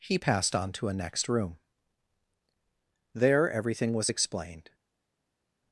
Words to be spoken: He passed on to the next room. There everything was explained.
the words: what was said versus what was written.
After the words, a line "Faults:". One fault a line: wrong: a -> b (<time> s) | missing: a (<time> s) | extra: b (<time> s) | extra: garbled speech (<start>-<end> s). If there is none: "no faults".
He passed on to a next room. There everything was explained.
Faults:
wrong: the -> a (0.9 s)